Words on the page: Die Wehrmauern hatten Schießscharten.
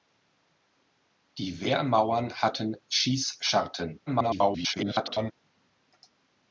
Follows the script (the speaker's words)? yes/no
no